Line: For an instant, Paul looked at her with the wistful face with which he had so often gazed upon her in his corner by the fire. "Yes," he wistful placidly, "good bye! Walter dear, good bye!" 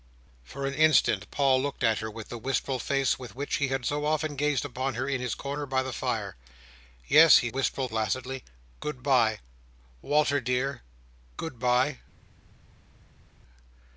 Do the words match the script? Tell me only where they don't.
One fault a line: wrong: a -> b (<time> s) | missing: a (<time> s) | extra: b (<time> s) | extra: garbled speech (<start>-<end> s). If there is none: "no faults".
no faults